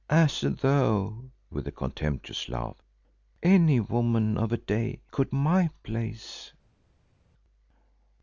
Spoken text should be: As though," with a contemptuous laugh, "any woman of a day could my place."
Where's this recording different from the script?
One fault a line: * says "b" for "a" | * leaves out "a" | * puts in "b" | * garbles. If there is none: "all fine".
all fine